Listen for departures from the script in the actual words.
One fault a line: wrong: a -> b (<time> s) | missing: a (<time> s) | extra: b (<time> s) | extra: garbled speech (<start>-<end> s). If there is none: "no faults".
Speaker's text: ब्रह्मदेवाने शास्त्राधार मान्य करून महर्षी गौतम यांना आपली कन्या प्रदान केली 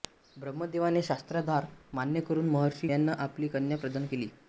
missing: गौतम (2.9 s)